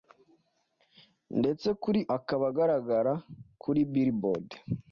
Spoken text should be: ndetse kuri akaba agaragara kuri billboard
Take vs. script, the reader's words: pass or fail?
pass